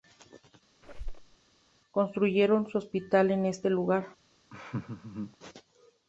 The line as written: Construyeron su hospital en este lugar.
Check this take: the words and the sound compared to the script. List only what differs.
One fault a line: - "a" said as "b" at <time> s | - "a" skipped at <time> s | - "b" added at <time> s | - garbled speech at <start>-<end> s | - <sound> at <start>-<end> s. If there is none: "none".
- squeak at 0.8-1.4 s
- laugh at 4.5-5.4 s